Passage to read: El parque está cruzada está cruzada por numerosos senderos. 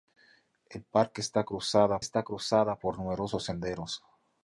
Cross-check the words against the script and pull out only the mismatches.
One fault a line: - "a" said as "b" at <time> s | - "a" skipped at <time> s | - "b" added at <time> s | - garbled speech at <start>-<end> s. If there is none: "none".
none